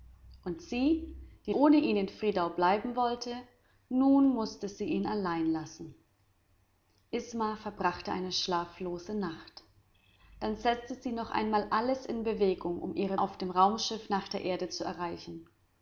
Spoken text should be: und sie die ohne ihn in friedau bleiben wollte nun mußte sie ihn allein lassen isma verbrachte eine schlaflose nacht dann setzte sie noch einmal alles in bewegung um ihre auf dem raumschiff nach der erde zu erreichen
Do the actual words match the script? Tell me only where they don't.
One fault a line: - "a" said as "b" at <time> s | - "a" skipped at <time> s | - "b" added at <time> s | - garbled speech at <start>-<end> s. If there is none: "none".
none